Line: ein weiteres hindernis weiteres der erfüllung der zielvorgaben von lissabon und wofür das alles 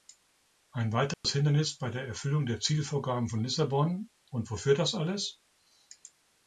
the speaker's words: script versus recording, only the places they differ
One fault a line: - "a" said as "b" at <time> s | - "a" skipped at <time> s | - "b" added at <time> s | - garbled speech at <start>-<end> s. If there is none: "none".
- "weiteres" said as "bei" at 1.8 s